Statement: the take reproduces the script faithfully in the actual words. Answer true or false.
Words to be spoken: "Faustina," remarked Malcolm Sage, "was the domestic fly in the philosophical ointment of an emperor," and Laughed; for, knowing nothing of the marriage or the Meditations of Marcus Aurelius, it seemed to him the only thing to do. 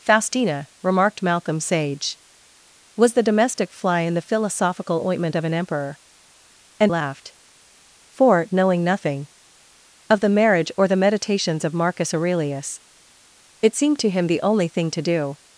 true